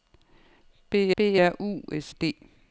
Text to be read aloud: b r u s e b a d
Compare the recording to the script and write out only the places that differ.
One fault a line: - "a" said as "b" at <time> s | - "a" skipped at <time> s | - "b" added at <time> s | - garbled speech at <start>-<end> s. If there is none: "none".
- "b" added at 1.1 s
- "e b a" skipped at 2.1 s